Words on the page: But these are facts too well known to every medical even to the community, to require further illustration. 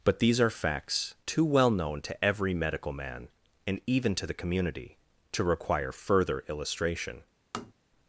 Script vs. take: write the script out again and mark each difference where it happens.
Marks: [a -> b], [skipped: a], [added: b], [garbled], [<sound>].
But these are facts too well known to every medical [added: man and] even to the community, to require further illustration. [tap]